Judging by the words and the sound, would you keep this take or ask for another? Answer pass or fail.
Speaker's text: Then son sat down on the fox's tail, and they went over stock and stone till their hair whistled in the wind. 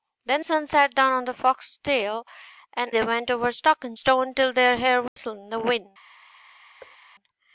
fail